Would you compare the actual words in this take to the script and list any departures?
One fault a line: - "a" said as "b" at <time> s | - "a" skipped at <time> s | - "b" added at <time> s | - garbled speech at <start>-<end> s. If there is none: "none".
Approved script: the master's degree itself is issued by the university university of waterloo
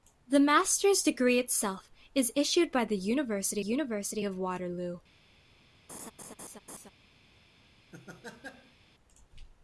none